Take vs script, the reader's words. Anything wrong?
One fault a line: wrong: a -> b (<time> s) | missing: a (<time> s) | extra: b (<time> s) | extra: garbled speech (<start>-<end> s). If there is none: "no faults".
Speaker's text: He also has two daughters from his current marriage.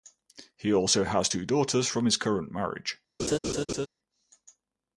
no faults